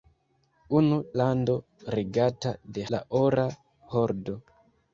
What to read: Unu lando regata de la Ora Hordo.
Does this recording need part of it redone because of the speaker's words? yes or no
no